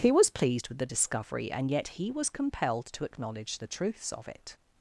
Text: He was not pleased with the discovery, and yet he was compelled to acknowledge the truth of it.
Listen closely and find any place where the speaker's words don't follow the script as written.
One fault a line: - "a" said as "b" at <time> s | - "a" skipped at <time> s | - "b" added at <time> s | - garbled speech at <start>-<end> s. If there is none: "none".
- "not" skipped at 0.3 s
- "truth" said as "truths" at 3.6 s